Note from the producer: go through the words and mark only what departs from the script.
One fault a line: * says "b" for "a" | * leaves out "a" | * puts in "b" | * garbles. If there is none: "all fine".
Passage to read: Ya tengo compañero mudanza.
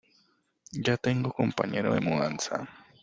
* puts in "de"